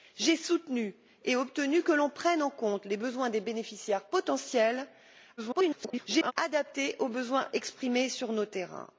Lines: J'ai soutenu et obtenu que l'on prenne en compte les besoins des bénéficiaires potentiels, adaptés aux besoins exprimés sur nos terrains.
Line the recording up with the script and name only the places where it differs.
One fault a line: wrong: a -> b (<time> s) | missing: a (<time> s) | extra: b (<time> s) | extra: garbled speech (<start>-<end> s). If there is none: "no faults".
extra: garbled speech (5.4-6.3 s)